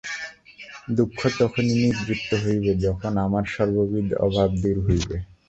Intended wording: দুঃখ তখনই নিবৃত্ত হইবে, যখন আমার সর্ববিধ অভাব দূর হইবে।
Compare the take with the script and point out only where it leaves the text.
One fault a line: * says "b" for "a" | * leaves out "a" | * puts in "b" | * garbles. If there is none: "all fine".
all fine